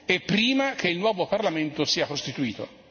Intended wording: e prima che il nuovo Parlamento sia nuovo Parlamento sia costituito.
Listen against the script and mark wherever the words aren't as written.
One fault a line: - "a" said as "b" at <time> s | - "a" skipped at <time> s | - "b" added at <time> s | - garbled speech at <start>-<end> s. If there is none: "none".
- "nuovo Parlamento sia" skipped at 2.1 s